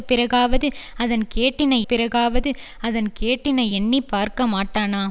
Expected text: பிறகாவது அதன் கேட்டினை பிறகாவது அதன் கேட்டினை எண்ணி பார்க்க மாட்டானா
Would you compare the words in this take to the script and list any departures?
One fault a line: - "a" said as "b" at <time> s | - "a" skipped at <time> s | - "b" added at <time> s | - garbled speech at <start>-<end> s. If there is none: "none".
none